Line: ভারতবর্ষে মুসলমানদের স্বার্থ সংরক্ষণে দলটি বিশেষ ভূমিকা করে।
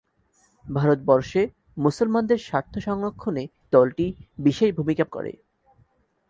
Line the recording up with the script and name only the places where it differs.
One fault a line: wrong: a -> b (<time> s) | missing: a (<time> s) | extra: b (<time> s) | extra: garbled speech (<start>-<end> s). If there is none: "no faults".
no faults